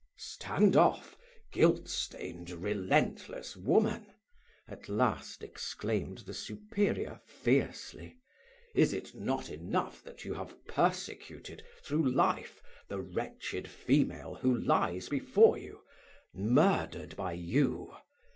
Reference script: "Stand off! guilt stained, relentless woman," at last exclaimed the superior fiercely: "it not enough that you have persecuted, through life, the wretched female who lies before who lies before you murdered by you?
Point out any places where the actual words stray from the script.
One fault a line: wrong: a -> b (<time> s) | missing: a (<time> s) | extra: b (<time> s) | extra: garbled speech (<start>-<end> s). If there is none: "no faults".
extra: is (8.7 s)
missing: who lies before (15.6 s)